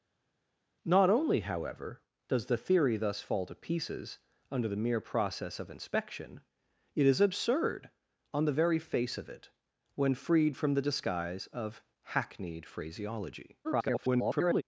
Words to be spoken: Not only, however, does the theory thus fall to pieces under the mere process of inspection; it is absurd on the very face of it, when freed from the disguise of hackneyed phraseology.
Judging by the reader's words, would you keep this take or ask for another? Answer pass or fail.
fail